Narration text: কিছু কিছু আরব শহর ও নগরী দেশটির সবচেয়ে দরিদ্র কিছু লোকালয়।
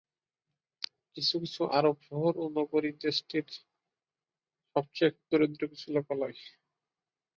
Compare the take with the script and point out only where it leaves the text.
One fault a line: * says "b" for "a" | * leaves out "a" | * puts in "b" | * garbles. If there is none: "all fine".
all fine